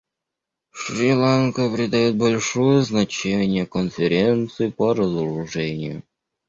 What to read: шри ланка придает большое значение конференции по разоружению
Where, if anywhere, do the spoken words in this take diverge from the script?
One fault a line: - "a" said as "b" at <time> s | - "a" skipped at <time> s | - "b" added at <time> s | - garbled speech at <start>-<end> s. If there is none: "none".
none